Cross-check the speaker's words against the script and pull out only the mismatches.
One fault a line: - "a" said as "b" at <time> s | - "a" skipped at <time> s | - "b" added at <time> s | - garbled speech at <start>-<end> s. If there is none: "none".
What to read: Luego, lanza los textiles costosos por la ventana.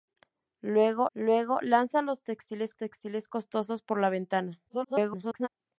- "luego" added at 1.1 s
- "textiles" added at 2.8 s
- garbled speech at 4.7-5.5 s